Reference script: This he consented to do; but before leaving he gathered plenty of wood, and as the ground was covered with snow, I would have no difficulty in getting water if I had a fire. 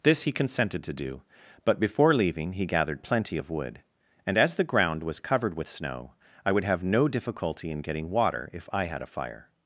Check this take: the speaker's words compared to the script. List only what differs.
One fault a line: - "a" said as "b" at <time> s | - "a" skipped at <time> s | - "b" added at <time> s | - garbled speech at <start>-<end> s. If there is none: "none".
none